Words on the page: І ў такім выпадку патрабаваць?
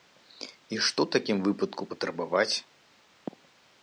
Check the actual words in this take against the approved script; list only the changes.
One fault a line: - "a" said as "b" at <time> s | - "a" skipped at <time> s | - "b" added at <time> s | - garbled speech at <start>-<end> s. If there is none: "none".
- "што" added at 0.8 s